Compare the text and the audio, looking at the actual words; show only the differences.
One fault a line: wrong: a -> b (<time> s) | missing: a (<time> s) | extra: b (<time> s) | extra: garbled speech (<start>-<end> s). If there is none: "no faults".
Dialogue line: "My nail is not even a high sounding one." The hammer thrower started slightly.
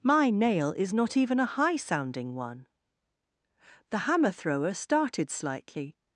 no faults